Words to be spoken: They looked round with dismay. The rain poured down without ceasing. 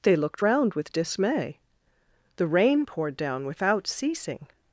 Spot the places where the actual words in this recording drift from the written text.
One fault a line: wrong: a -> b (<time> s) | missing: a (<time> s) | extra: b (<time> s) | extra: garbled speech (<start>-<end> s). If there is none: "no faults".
no faults